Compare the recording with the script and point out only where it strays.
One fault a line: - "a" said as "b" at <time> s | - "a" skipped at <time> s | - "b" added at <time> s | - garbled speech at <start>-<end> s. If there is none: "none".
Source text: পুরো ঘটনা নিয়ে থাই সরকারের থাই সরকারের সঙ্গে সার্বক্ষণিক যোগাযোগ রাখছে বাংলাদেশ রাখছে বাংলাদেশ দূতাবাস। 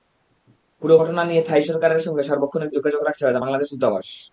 - "থাই সরকারের" skipped at 2.0 s
- "রাখছে বাংলাদেশ" skipped at 3.7 s